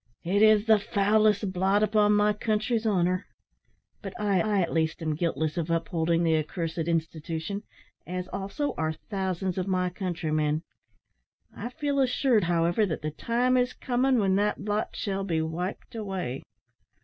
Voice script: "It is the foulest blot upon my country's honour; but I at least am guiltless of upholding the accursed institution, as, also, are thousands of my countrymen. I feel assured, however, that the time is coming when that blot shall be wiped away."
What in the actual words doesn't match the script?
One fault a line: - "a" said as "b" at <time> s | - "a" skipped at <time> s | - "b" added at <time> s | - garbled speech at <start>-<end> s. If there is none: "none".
- "I" added at 4.4 s